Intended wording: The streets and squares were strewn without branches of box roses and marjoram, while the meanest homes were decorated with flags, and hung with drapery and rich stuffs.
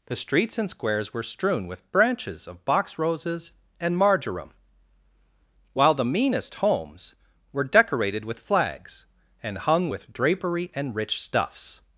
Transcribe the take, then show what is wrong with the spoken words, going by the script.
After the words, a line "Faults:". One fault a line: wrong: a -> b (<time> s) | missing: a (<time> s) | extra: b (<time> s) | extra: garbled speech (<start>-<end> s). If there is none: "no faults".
The streets and squares were strewn with branches of box roses and marjoram, while the meanest homes were decorated with flags, and hung with drapery and rich stuffs.
Faults:
wrong: without -> with (1.7 s)